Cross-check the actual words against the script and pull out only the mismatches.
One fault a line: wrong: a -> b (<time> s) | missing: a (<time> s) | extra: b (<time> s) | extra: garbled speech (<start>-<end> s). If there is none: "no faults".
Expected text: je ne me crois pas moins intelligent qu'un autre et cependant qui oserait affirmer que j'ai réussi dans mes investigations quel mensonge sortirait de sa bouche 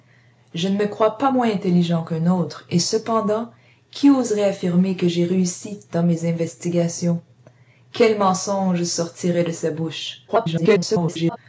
extra: garbled speech (10.3-11.4 s)